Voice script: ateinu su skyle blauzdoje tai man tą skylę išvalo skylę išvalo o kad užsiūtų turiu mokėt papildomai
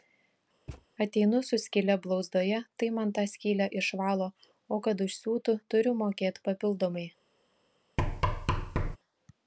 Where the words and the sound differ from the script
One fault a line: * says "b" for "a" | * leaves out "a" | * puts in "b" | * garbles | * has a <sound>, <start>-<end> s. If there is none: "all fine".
* has a thud, 0.7-0.9 s
* leaves out "skylę išvalo"
* has a thud, 8.0-9.0 s